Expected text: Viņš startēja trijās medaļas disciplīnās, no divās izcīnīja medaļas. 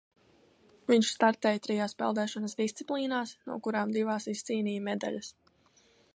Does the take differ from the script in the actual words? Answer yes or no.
yes